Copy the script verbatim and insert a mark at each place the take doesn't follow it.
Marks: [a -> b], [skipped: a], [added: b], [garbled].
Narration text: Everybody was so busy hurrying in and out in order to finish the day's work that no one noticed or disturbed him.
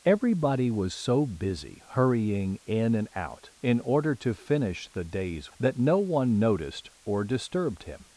Everybody was so busy hurrying in and out in order to finish the day's [skipped: work] that no one noticed or disturbed him.